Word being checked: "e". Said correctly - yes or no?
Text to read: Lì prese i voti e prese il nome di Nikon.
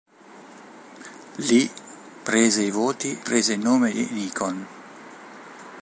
no